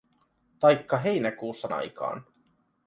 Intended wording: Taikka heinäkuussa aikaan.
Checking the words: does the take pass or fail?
pass